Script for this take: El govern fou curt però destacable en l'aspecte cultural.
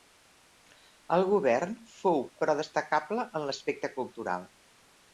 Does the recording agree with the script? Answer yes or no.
no